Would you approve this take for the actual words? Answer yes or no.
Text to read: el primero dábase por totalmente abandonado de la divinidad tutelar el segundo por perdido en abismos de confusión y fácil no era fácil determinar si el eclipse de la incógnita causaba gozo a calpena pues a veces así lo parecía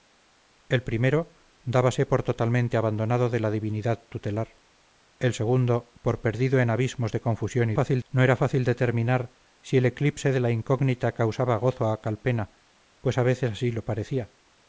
yes